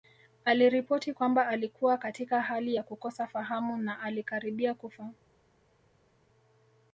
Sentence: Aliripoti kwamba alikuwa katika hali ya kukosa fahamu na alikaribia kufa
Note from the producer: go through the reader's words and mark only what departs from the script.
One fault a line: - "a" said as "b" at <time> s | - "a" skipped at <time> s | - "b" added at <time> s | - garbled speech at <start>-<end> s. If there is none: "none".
none